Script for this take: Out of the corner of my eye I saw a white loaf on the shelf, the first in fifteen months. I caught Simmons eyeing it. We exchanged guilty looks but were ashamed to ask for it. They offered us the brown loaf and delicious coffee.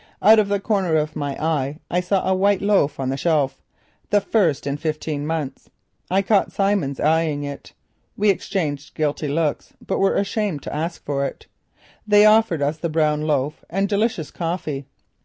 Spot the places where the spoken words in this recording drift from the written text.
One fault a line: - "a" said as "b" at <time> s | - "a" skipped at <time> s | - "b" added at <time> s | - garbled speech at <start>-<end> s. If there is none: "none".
none